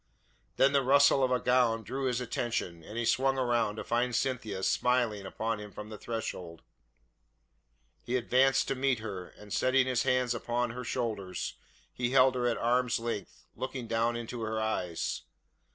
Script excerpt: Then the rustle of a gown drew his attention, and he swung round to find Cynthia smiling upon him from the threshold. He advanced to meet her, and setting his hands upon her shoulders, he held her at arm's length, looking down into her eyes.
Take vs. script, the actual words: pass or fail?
pass